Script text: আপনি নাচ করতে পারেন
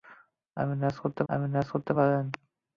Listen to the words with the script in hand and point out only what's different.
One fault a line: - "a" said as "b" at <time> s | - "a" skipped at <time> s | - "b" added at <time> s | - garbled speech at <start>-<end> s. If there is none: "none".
- "আপনি নাচ করতে" added at 1.3 s